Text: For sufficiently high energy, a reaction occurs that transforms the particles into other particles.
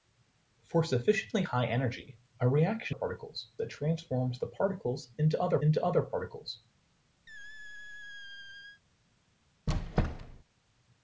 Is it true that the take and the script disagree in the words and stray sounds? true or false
true